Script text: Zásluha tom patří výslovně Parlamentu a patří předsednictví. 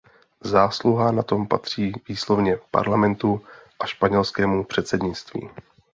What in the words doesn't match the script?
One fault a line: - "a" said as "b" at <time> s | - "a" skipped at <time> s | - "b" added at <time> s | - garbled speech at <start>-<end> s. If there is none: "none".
- "na" added at 1.1 s
- "patří" said as "španělskému" at 3.9 s